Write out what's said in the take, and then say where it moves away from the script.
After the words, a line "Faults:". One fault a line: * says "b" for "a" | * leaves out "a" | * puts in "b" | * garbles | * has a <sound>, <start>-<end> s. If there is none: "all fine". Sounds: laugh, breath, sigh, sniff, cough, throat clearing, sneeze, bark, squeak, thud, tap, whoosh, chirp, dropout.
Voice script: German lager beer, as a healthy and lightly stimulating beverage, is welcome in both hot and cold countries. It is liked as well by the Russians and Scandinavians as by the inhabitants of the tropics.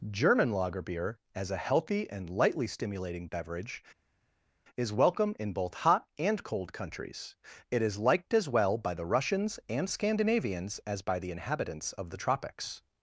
German lager beer, as a healthy and lightly stimulating beverage, is welcome in both hot and cold countries. It is liked as well by the Russians and Scandinavians as by the inhabitants of the tropics.
Faults:
all fine